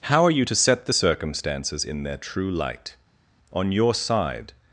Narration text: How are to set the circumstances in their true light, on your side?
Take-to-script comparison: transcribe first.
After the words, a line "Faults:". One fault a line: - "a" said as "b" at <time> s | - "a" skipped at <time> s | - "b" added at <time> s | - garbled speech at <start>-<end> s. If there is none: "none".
How are you to set the circumstances in their true light, on your side?
Faults:
- "you" added at 0.3 s